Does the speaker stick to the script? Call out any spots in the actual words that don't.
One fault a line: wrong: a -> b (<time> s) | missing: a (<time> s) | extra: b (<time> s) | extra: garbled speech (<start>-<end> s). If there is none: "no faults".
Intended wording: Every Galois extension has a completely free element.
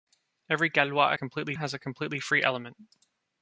wrong: extension -> completely (1.1 s)